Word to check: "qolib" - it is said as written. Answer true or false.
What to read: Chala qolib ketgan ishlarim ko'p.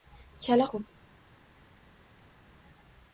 false